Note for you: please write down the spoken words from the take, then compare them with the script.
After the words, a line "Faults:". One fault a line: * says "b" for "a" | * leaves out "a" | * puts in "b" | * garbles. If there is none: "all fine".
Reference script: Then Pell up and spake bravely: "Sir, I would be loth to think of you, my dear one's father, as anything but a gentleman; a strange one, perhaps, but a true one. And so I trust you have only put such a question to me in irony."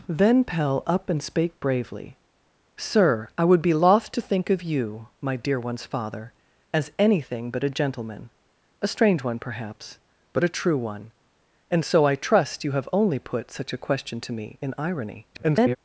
Then Pell up and spake bravely: "Sir, I would be loth to think of you, my dear one's father, as anything but a gentleman; a strange one, perhaps, but a true one. And so I trust you have only put such a question to me in irony." [garbled]
Faults:
* garbles